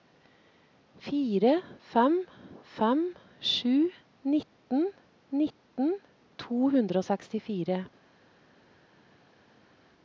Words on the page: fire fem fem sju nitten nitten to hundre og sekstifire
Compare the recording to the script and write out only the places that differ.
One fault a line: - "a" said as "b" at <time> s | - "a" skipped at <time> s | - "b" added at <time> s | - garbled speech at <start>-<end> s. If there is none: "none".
none